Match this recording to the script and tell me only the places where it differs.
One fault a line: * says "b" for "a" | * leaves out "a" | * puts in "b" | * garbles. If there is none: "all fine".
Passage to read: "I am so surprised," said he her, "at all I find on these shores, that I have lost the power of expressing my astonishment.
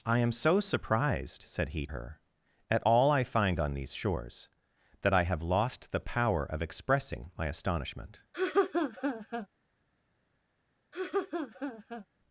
all fine